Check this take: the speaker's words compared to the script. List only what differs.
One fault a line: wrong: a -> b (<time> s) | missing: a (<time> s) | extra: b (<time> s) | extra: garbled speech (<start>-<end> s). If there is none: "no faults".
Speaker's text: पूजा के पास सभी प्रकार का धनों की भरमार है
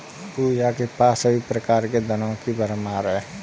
wrong: का -> के (1.9 s)